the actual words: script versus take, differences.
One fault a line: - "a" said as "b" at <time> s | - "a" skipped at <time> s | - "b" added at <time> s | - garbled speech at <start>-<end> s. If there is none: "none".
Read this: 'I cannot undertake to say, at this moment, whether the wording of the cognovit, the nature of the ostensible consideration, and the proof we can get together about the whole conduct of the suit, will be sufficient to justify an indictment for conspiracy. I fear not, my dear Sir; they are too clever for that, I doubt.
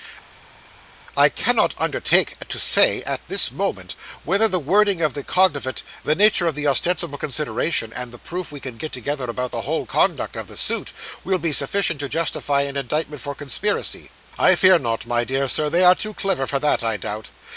none